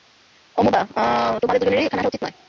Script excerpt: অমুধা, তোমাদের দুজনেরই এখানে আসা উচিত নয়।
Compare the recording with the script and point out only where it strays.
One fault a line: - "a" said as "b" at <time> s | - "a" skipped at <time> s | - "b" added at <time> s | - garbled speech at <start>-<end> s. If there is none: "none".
none